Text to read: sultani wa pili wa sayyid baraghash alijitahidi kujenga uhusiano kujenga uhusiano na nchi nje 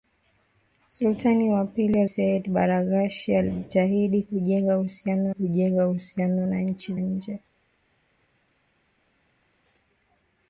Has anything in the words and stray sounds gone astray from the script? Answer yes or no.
no